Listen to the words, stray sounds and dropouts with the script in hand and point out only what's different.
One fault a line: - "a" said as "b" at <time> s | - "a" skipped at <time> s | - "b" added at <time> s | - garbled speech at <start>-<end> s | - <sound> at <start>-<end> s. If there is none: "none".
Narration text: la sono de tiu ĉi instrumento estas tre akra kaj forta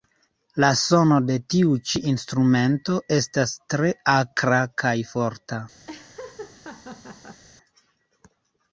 - laugh at 5.9-7.4 s